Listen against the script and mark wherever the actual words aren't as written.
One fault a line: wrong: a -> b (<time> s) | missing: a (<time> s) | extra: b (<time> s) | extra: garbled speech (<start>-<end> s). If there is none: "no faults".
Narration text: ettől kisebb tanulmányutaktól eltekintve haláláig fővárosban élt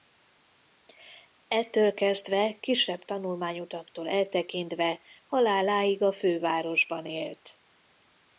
extra: kezdve (1.9 s)
extra: a (6.0 s)